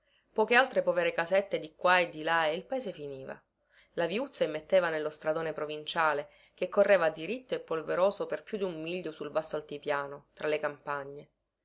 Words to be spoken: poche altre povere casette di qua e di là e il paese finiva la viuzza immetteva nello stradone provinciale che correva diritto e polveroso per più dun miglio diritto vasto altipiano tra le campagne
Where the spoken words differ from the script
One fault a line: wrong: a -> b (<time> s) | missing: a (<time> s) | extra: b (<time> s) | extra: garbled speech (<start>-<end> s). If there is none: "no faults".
wrong: diritto -> sul (9.1 s)